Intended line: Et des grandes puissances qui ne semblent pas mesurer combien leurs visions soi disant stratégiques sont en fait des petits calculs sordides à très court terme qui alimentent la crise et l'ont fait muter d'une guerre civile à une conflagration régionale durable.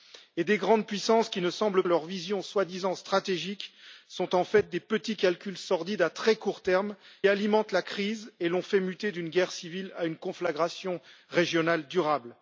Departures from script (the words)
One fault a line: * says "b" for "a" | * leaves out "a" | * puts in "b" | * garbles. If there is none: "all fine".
* leaves out "pas mesurer combien"
* leaves out "qui"